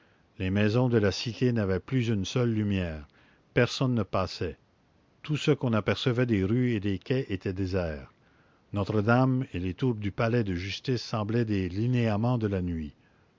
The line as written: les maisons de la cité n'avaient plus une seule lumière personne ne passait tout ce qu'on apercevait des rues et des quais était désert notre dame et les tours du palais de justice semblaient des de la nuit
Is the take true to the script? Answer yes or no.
no